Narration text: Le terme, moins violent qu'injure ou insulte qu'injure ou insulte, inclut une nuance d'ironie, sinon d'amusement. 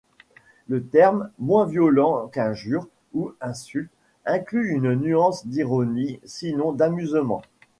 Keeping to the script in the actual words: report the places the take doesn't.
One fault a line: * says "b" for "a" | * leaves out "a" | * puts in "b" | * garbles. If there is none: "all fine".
* leaves out "qu'injure ou insulte"